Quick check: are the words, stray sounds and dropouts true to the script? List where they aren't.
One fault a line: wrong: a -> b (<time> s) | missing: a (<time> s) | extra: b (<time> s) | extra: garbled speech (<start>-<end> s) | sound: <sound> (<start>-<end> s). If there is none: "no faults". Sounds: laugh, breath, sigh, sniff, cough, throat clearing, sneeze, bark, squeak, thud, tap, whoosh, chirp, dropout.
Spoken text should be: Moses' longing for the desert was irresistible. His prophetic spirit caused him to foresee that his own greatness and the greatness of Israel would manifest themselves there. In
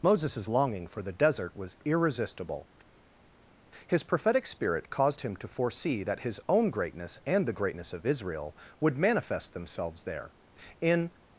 no faults